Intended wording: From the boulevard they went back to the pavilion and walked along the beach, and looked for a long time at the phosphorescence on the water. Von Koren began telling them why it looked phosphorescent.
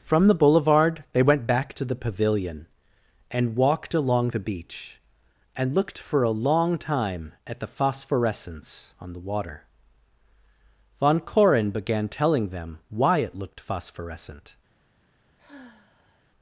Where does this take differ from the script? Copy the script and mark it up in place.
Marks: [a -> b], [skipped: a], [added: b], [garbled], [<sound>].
From the boulevard they went back to the pavilion and walked along the beach, and looked for a long time at the phosphorescence on the water. Von Koren began telling them why it looked phosphorescent. [sigh]